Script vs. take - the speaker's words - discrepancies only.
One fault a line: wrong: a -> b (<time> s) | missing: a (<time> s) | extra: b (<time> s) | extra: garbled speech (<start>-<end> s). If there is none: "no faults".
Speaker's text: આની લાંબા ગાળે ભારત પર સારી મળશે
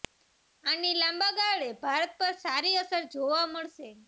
extra: અસર જોવા (2.8 s)